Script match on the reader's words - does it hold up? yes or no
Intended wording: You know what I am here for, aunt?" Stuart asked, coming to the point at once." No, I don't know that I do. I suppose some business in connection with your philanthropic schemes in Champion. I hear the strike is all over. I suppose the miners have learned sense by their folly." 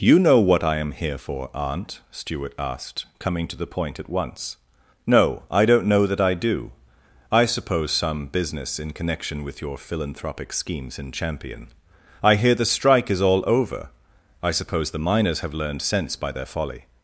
yes